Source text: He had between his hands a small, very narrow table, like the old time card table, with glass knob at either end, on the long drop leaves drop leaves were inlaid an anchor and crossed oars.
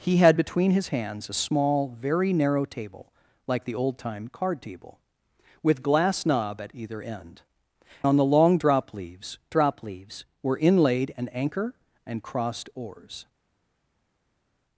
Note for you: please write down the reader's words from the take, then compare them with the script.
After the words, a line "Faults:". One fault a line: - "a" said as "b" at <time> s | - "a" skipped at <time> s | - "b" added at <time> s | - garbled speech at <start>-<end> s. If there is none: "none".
He had between his hands a small, very narrow table, like the old time card table, with glass knob at either end, on the long drop leaves drop leaves were inlaid an anchor and crossed oars.
Faults:
none